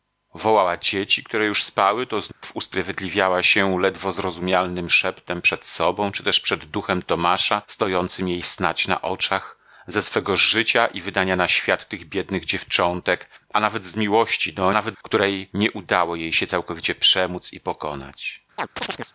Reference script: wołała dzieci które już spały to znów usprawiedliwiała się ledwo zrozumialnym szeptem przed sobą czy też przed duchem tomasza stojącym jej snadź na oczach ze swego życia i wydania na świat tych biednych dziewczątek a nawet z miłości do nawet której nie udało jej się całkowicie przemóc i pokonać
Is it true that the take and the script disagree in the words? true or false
false